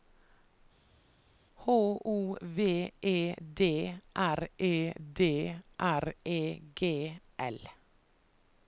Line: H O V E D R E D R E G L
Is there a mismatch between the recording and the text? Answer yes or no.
no